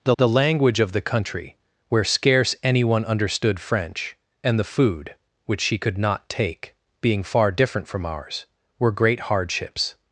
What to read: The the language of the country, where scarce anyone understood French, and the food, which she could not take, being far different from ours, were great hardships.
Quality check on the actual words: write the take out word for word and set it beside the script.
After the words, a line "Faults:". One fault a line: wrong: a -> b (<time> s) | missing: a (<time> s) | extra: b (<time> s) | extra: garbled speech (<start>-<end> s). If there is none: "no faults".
The the language of the country, where scarce anyone understood French, and the food, which she could not take, being far different from ours, were great hardships.
Faults:
no faults